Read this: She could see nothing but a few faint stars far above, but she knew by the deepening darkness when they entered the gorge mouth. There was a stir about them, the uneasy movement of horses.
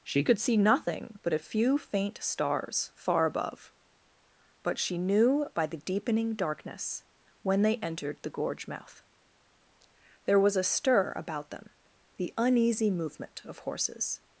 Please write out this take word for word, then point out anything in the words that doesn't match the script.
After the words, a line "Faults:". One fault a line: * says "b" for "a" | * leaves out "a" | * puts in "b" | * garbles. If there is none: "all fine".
She could see nothing but a few faint stars far above, but she knew by the deepening darkness when they entered the gorge mouth. There was a stir about them, the uneasy movement of horses.
Faults:
all fine